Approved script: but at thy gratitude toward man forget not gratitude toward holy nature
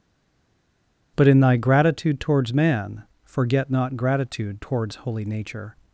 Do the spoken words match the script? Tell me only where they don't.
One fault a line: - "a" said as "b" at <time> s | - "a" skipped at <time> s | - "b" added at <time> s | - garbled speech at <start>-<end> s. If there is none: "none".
- "at" said as "in" at 1.3 s
- "toward" said as "towards" at 2.2 s
- "toward" said as "towards" at 4.6 s